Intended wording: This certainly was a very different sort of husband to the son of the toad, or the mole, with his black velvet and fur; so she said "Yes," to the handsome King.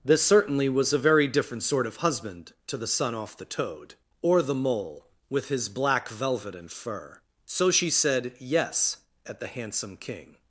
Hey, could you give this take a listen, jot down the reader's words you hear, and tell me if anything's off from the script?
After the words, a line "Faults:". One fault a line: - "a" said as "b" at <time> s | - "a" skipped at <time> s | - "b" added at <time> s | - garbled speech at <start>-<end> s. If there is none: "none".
This certainly was a very different sort of husband to the son off the toad, or the mole, with his black velvet and fur; so she said "Yes," at the handsome King.
Faults:
- "of" said as "off" at 3.1 s
- "to" said as "at" at 9.3 s